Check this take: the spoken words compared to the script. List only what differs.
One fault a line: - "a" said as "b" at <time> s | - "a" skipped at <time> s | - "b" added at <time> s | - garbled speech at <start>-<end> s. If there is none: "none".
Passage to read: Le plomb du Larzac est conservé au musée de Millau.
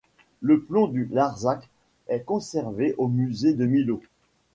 none